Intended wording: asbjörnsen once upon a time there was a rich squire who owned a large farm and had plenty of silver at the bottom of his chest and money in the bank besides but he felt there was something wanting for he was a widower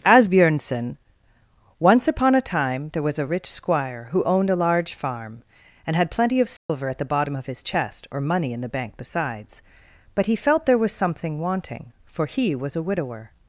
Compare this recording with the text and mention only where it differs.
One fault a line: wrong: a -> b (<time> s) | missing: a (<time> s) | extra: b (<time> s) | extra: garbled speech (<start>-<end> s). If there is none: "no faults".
wrong: and -> or (8.1 s)